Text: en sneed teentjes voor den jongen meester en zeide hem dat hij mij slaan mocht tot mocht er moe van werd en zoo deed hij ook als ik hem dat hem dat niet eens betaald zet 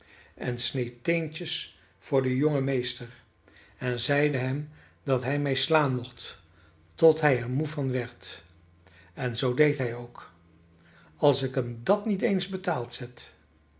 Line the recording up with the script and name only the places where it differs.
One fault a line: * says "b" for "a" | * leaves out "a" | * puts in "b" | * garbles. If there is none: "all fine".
* says "hij" for "mocht"
* leaves out "hem dat"